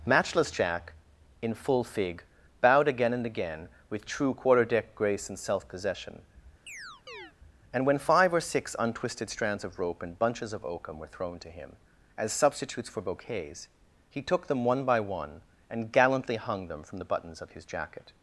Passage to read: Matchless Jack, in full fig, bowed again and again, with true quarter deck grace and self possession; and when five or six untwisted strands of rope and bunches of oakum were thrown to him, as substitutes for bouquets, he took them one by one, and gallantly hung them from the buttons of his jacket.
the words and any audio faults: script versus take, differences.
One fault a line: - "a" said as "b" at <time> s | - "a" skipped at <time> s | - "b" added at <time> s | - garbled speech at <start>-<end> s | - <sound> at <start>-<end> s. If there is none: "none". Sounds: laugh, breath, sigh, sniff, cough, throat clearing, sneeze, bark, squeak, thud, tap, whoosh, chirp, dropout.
- chirp at 6.7-7.3 s